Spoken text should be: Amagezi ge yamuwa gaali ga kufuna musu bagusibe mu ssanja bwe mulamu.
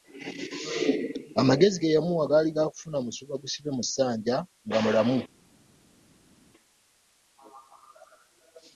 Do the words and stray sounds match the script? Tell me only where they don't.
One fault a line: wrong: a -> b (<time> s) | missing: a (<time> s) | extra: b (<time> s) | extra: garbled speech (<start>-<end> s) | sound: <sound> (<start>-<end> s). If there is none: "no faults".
wrong: bwe -> nga (4.7 s)